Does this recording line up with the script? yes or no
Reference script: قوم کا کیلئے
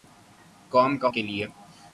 yes